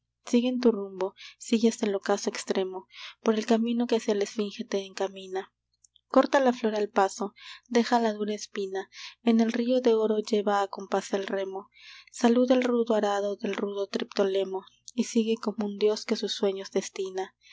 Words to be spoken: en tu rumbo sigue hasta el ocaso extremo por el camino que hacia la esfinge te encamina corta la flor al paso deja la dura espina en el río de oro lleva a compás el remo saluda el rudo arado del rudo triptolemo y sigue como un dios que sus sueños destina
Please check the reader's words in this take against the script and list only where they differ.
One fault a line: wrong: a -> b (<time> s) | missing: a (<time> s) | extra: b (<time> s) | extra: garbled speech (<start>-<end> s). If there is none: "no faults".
no faults